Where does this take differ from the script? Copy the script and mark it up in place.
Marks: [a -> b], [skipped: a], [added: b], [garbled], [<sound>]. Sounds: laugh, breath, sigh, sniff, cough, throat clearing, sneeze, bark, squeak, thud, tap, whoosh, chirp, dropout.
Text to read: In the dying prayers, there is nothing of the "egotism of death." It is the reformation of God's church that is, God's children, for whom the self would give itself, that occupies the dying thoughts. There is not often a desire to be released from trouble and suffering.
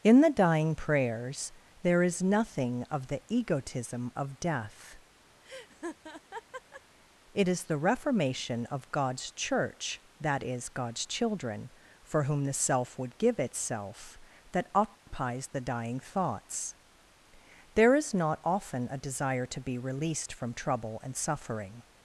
In the dying prayers, there is nothing of the "egotism of death." [laugh] It is the reformation of God's church that is, God's children, for whom the self would give itself, that occupies [dropout] the dying thoughts. There is not often a desire to be released from trouble and suffering.